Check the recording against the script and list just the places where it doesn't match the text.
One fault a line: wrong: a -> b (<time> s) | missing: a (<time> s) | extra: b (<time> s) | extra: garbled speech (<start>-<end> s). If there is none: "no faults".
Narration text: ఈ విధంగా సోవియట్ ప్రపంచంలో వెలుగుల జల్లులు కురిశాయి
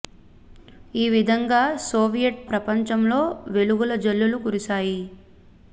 no faults